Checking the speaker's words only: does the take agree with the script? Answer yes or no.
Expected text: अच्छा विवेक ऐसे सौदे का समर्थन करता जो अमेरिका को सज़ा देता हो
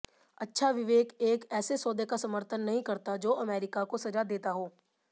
no